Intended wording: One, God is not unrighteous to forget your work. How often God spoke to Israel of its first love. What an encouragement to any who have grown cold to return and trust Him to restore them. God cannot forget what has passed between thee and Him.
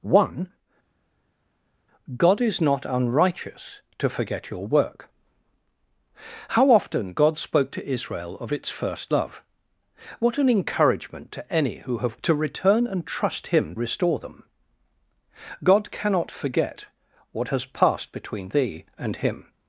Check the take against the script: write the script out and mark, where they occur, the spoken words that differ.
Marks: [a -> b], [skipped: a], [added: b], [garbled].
One, God is not unrighteous to forget your work. How often God spoke to Israel of its first love. What an encouragement to any who have [skipped: grown cold] to return and trust Him [skipped: to] restore them. God cannot forget what has passed between thee and Him.